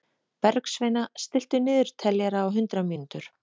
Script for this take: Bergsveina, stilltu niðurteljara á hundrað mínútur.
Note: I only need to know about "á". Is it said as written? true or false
true